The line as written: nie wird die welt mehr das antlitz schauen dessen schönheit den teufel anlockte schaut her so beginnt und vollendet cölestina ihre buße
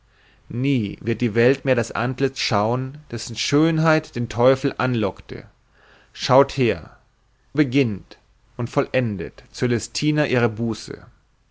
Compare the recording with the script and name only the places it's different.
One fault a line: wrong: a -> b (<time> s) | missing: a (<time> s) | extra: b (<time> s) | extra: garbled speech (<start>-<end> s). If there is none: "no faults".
missing: so (7.0 s)